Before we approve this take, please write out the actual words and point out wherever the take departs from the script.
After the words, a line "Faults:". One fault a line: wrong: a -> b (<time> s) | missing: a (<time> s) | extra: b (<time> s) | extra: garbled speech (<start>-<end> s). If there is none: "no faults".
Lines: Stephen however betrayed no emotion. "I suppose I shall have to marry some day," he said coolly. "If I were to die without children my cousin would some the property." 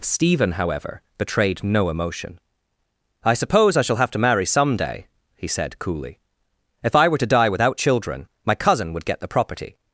Stephen however betrayed no emotion. "I suppose I shall have to marry some day," he said coolly. "If I were to die without children my cousin would get the property."
Faults:
wrong: some -> get (9.1 s)